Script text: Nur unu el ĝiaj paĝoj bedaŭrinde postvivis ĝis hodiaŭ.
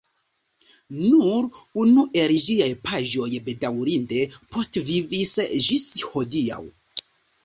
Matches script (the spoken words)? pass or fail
pass